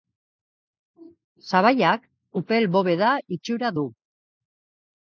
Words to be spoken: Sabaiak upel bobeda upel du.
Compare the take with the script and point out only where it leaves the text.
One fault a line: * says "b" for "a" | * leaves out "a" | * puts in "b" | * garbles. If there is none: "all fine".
* says "itxura" for "upel"